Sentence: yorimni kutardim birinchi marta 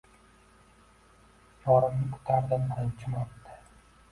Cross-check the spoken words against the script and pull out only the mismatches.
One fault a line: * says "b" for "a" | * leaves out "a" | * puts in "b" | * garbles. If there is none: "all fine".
all fine